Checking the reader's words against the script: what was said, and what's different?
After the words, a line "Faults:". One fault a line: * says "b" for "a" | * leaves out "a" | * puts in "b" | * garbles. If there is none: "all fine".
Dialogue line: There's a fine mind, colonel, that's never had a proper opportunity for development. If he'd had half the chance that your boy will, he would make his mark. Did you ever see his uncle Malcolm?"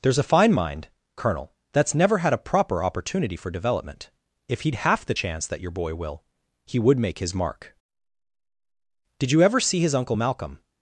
There's a fine mind, colonel, that's never had a proper opportunity for development. If he'd half the chance that your boy will, he would make his mark. Did you ever see his uncle Malcolm?"
Faults:
* leaves out "had"